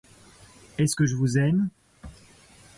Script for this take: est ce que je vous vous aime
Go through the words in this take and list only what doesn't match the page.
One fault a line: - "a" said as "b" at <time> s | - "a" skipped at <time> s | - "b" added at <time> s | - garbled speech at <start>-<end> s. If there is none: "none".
- "vous" skipped at 1.4 s